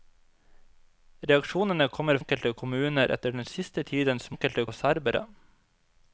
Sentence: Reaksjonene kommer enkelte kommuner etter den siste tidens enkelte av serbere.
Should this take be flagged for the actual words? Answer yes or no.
no